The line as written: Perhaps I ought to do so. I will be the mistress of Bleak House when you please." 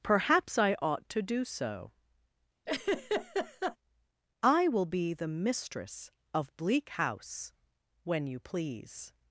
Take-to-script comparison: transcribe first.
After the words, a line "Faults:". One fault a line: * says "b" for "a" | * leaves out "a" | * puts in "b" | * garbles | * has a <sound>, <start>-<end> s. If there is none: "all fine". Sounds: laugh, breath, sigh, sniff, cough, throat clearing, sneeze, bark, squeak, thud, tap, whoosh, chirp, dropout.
Perhaps I ought to do so. I will be the mistress of Bleak House when you please."
Faults:
* has a laugh, 2.7-3.8 s